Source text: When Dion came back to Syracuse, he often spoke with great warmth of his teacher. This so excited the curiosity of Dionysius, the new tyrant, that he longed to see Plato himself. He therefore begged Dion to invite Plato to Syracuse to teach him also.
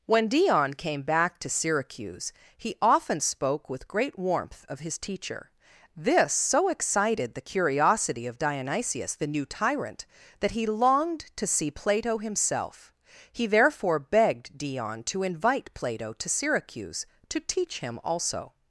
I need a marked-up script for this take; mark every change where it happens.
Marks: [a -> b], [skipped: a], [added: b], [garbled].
When Dion came back to Syracuse, he often spoke with great warmth of his teacher. This so excited the curiosity of Dionysius, the new tyrant, that he longed to see Plato himself. He therefore begged Dion to invite Plato to Syracuse to teach him also.